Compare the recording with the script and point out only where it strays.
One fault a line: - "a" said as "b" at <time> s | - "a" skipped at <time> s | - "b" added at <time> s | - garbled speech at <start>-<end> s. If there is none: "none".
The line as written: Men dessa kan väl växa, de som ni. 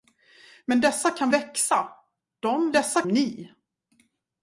- "väl" skipped at 1.3 s
- "som" said as "dessa" at 2.7 s